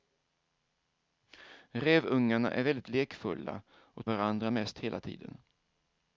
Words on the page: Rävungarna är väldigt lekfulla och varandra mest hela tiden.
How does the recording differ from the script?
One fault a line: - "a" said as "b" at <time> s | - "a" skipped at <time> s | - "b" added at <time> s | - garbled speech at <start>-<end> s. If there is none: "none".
none